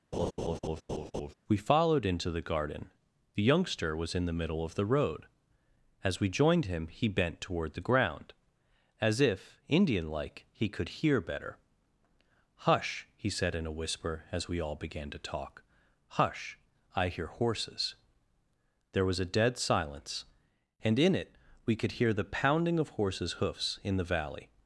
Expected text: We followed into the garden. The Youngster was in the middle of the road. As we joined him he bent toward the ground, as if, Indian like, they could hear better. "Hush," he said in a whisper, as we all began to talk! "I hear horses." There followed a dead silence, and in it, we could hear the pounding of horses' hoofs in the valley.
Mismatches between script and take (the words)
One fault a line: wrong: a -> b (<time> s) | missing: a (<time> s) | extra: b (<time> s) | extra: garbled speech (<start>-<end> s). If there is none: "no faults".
wrong: they -> he (10.5 s)
extra: Hush (16.2 s)
wrong: followed -> was (19.0 s)